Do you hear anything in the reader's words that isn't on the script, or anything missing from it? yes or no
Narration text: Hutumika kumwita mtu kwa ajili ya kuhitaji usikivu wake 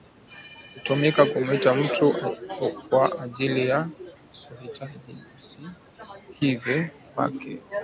no